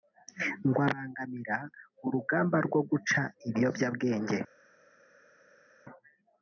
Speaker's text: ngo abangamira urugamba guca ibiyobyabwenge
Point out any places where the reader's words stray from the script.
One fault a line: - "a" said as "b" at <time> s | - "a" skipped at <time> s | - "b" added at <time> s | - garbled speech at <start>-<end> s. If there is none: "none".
- "rwo" added at 2.6 s